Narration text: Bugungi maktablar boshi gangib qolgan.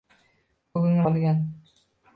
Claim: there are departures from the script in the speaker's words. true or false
true